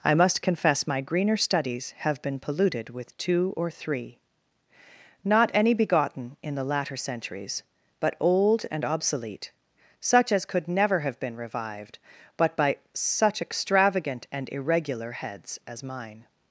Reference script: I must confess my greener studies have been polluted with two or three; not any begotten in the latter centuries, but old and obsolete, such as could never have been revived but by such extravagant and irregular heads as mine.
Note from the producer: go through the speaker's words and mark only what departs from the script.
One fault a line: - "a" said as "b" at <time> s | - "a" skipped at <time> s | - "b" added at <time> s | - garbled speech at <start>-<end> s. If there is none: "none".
none